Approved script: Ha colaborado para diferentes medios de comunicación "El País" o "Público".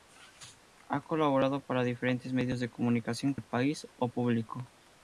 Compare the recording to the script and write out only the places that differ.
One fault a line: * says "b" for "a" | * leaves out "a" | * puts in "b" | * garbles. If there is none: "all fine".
all fine